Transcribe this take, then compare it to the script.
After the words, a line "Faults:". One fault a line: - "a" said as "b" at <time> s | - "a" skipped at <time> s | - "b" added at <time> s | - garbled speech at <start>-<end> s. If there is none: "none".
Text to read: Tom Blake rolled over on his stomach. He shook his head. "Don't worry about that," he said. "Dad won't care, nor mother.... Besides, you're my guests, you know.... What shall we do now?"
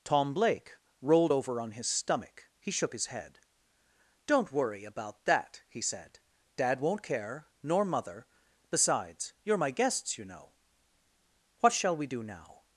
Tom Blake rolled over on his stomach. He shook his head. "Don't worry about that," he said. "Dad won't care, nor mother.... Besides, you're my guests, you know.... What shall we do now?"
Faults:
none